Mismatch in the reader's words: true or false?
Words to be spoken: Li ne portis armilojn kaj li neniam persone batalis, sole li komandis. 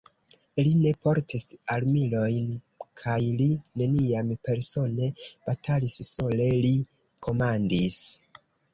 false